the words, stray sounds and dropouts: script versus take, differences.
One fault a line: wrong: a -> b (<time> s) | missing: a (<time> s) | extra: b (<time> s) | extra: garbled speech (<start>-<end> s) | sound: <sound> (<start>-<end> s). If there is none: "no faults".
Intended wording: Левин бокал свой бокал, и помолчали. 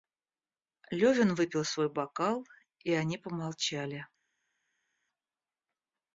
wrong: бокал -> выпил (1.4 s)
extra: они (2.9 s)